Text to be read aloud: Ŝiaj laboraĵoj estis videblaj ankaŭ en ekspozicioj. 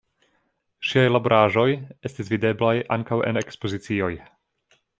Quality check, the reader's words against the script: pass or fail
pass